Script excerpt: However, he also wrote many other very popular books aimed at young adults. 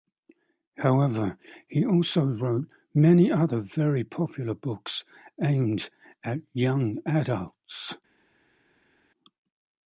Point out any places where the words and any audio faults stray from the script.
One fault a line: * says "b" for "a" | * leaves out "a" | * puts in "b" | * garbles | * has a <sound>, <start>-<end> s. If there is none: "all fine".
all fine